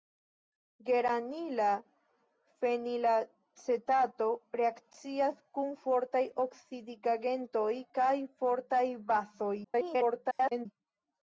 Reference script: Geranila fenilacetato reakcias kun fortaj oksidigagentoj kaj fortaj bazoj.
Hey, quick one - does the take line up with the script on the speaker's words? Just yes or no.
no